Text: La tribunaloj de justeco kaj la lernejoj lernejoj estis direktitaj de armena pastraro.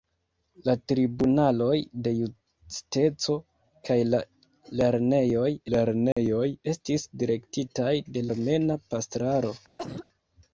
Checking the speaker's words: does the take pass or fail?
pass